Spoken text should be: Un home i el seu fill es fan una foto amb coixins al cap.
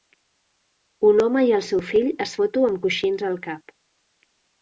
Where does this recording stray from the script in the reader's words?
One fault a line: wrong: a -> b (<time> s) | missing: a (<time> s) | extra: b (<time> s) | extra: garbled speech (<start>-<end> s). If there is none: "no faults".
missing: fan una (2.4 s)